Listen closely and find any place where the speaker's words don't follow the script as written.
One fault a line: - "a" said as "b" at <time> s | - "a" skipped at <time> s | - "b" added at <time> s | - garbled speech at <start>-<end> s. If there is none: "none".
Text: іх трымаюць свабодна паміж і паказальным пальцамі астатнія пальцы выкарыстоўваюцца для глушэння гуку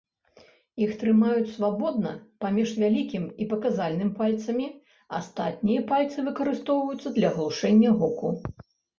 - "вялікім" added at 2.8 s